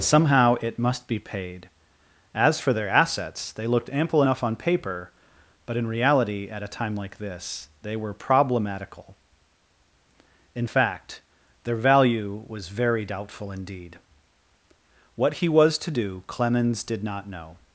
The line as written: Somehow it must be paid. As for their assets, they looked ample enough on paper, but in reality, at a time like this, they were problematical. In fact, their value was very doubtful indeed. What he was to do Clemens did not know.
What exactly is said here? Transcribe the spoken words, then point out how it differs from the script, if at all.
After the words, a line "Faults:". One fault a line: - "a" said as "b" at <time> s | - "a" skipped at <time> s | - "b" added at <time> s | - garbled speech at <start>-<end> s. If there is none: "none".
Somehow it must be paid. As for their assets, they looked ample enough on paper, but in reality, at a time like this, they were problematical. In fact, their value was very doubtful indeed. What he was to do Clemens did not know.
Faults:
none